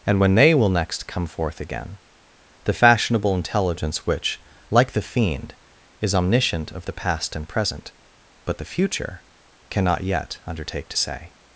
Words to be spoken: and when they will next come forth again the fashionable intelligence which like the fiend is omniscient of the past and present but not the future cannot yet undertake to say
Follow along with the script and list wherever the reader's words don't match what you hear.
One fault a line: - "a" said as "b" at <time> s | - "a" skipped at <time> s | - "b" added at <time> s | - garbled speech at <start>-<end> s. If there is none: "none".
- "not" skipped at 8.6 s